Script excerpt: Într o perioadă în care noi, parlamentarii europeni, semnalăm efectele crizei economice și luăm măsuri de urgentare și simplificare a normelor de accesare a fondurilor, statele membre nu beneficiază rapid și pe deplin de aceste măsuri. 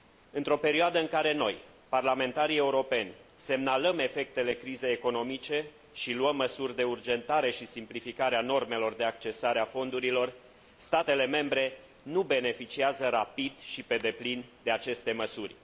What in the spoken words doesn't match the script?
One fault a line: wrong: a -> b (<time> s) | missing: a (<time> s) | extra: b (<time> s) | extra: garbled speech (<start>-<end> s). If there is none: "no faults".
no faults